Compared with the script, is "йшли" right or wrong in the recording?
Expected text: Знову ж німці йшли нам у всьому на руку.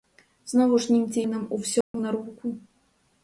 wrong